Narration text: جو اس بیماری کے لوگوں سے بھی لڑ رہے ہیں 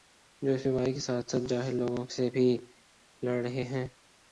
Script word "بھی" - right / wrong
right